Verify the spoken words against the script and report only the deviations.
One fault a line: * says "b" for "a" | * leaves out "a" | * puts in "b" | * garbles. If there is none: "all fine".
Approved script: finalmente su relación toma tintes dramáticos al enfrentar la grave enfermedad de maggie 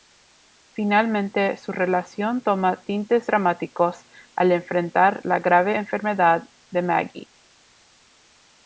all fine